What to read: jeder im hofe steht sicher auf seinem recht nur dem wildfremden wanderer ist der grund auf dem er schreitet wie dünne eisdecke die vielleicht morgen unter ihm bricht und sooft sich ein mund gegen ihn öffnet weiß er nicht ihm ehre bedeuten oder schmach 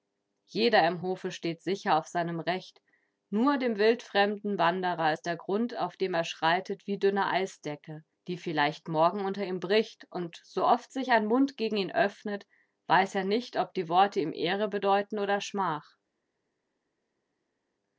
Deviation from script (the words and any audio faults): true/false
true